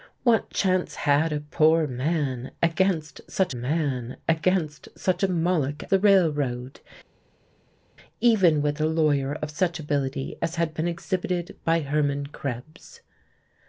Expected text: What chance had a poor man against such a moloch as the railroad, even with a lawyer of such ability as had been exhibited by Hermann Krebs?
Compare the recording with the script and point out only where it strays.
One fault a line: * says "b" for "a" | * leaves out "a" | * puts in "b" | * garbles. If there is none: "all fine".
* puts in "man against such"
* leaves out "as"